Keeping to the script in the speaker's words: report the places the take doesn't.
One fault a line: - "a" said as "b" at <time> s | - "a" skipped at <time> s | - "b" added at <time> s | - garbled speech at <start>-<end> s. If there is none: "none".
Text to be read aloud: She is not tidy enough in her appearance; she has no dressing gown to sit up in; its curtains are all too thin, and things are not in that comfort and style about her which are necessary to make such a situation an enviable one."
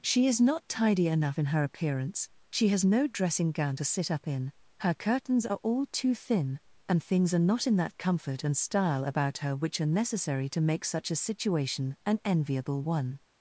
- "its" said as "her" at 4.8 s